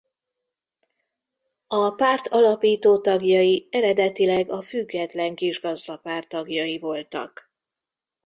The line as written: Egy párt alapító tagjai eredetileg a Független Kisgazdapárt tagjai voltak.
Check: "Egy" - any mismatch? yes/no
yes